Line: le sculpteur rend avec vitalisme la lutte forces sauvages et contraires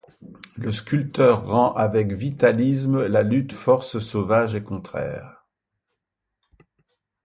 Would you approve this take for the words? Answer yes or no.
yes